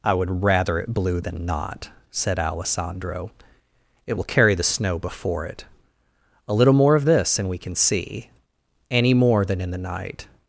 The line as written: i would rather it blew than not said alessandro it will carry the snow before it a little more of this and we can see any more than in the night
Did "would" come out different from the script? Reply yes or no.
no